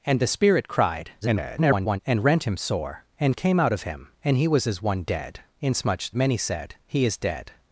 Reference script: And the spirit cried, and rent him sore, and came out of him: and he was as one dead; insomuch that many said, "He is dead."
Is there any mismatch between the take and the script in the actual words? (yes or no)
yes